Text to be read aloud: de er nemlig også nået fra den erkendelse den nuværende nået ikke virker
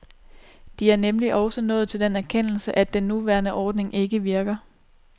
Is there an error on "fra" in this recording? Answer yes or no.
yes